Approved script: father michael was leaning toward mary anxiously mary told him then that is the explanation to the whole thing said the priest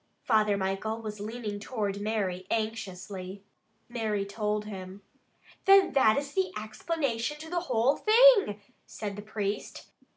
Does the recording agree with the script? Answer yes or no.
yes